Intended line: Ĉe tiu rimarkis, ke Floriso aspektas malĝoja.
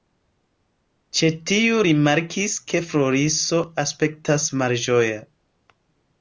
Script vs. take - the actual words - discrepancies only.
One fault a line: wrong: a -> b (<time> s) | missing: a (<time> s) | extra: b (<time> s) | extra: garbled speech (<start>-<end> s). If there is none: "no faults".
no faults